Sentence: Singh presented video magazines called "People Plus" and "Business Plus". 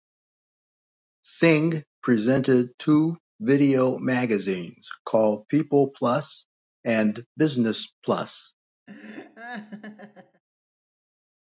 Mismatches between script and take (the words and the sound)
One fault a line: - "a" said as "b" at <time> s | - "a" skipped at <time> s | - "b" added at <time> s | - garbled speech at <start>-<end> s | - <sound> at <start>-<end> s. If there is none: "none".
- "two" added at 2.8 s
- laugh at 8.9-10.4 s